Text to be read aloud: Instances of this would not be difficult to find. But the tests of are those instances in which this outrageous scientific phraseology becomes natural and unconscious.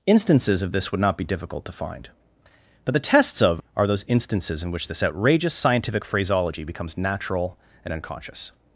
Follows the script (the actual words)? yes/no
yes